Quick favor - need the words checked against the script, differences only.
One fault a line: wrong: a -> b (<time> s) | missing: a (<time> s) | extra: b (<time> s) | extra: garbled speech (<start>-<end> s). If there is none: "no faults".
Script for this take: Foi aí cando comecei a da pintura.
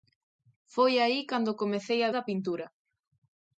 no faults